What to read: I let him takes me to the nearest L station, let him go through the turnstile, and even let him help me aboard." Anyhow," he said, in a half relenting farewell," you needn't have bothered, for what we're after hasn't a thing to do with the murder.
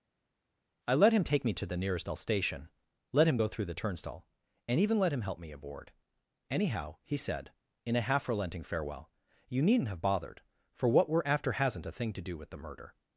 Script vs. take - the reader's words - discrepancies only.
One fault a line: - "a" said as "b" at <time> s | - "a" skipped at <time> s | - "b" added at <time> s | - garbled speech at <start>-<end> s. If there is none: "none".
- "takes" said as "take" at 1.2 s